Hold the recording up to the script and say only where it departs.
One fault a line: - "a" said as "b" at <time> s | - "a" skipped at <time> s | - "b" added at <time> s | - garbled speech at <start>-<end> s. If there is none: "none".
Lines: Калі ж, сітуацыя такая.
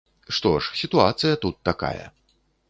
- "Калі" said as "Што" at 0.4 s
- "тут" added at 1.4 s